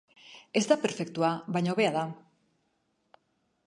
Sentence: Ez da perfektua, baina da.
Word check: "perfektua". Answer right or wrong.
right